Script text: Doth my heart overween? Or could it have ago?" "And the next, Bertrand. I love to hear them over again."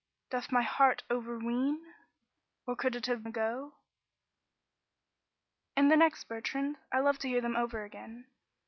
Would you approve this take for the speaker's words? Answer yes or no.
yes